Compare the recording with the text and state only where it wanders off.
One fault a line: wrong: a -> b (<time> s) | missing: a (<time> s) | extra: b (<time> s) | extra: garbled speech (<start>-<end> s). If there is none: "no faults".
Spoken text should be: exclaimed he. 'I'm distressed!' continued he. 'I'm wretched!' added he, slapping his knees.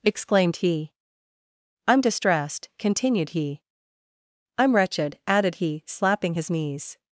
no faults